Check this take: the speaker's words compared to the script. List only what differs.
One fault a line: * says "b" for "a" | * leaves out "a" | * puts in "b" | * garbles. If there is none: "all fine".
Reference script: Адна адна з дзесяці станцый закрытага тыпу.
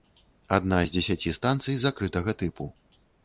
* leaves out "адна"